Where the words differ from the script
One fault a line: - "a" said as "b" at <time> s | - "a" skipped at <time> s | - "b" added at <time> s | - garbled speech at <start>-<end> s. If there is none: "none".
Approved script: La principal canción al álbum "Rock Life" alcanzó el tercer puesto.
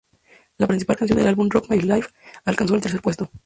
- "al" said as "del" at 1.2 s
- "My" added at 1.7 s